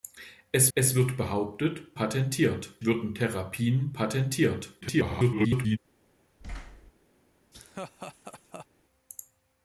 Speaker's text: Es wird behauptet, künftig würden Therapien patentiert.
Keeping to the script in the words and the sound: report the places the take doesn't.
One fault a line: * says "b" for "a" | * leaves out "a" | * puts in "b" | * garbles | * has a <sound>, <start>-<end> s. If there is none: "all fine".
* puts in "es"
* says "patentiert" for "künftig"
* garbles
* has a thud, 6.4-6.9 s
* has a laugh, 7.5-8.7 s